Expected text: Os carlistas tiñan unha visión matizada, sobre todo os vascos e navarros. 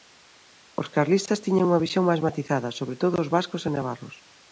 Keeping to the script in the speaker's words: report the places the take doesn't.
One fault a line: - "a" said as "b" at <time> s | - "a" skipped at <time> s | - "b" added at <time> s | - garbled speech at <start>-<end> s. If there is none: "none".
- "máis" added at 2.1 s